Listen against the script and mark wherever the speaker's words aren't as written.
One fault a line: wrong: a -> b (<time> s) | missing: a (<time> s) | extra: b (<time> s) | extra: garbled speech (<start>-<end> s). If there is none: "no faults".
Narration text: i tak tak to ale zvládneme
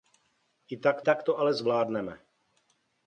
no faults